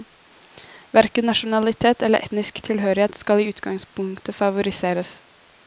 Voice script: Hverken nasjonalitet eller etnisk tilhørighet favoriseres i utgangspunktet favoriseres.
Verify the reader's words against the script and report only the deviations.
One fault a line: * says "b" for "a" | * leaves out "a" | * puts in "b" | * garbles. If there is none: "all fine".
* says "skal" for "favoriseres"